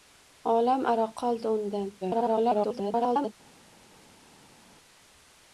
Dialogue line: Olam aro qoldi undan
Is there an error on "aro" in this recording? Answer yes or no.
no